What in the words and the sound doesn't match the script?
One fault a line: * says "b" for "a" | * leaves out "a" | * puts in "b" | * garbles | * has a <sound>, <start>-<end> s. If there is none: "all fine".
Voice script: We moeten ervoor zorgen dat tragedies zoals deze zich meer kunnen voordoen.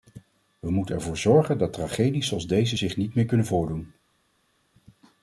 * puts in "niet"